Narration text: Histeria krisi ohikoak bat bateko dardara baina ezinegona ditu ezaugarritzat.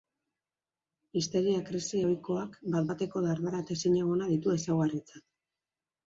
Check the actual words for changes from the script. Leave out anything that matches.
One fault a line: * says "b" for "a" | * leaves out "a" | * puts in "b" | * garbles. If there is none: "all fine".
* says "eta" for "baina"